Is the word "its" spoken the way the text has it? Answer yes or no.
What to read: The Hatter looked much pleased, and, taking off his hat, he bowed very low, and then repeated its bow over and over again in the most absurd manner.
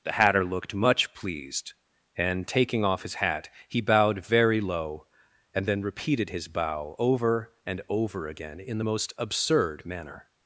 no